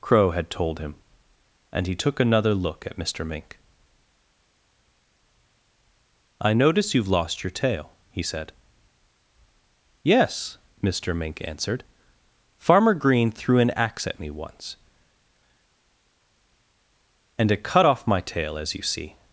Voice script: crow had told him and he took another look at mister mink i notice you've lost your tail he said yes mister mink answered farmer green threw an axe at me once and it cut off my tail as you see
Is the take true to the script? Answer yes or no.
yes